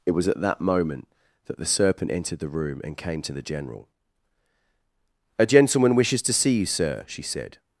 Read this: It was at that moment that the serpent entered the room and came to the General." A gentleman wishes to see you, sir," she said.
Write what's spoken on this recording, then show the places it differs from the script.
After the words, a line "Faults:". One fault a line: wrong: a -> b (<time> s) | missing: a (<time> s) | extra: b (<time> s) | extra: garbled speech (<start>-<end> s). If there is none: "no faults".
It was at that moment that the serpent entered the room and came to the General." A gentleman wishes to see you, sir," she said.
Faults:
no faults